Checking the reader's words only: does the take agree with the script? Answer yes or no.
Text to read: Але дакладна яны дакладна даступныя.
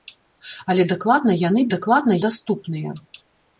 yes